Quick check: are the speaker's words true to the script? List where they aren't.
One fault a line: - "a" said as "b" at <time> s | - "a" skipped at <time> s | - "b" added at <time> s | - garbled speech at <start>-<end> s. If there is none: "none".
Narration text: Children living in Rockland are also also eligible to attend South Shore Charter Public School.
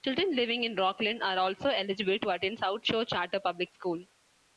- "also" skipped at 1.7 s